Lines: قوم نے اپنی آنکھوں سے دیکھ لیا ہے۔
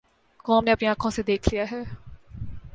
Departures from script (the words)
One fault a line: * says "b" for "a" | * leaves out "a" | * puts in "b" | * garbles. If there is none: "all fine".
all fine